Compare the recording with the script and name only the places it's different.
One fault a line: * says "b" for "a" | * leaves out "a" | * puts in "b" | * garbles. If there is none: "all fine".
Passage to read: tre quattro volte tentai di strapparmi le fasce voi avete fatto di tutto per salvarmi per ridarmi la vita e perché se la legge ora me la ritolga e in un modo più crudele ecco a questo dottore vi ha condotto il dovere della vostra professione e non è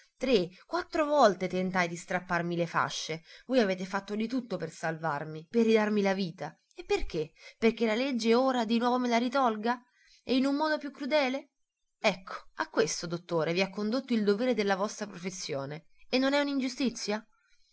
* says "perché" for "se"
* puts in "di nuovo"